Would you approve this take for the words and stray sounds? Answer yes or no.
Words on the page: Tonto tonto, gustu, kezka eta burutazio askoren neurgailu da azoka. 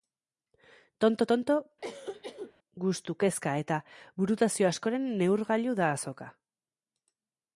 no